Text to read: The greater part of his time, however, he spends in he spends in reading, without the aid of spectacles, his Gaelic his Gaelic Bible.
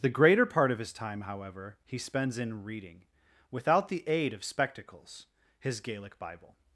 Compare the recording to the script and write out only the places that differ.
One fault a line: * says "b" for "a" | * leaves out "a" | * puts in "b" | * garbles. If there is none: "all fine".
* leaves out "he spends in"
* leaves out "his Gaelic"